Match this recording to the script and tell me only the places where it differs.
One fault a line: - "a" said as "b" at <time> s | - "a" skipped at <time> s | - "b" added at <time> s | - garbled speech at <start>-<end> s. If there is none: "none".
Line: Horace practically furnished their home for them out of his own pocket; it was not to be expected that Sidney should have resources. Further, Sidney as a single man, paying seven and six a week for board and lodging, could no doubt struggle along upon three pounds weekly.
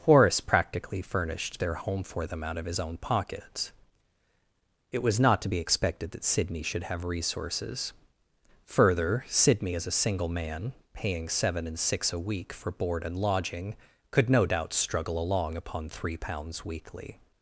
- "pocket" said as "pockets" at 3.0 s